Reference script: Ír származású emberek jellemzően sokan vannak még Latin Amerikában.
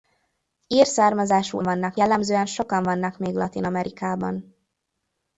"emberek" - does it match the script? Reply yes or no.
no